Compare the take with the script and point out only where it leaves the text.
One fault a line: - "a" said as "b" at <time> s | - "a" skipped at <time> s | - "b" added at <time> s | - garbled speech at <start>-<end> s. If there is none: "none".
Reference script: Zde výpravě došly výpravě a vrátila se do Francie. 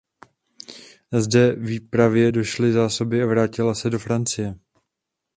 - "výpravě" said as "zásoby" at 2.7 s